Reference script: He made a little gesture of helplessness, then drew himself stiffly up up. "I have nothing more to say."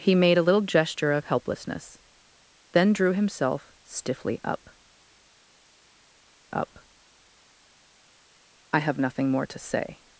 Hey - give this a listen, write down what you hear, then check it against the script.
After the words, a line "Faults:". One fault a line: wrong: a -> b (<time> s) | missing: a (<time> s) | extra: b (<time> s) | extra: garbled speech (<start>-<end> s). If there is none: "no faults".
He made a little gesture of helplessness, then drew himself stiffly up up. "I have nothing more to say."
Faults:
no faults